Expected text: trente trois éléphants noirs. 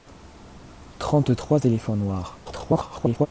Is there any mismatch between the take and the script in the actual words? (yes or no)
yes